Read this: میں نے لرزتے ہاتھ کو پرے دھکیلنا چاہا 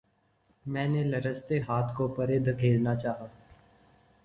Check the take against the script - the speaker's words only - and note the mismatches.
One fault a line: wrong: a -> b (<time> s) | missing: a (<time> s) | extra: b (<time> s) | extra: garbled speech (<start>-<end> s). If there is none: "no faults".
no faults